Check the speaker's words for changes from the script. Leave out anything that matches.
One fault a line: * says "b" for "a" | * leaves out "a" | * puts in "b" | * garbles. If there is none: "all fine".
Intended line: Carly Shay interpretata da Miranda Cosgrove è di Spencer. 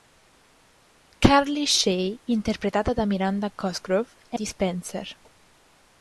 all fine